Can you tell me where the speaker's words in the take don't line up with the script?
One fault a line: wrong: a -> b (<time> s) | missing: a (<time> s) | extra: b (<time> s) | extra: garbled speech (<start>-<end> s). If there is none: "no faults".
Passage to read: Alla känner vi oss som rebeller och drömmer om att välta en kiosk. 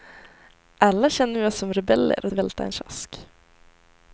missing: drömmer om att (2.3 s)